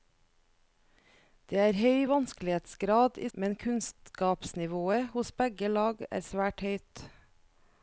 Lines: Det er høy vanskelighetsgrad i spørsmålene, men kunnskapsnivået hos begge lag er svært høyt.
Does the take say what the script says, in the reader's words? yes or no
no